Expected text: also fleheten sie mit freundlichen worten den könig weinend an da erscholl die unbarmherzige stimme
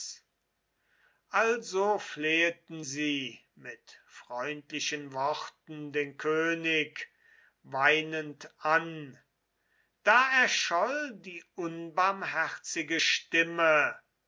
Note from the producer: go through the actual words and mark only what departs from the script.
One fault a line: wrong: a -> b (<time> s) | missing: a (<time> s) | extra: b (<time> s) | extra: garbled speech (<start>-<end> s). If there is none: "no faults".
no faults